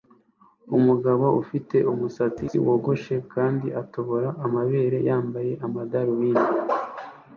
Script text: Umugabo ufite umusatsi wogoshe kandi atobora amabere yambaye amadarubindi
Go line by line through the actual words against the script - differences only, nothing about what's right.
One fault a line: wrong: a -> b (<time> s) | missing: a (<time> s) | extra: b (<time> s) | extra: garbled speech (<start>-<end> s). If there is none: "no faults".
no faults